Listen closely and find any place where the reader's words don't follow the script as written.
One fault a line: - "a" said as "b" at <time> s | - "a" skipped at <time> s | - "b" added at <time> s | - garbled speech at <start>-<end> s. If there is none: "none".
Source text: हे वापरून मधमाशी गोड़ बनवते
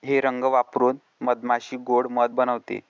- "रंग" added at 0.2 s
- "मध" added at 2.1 s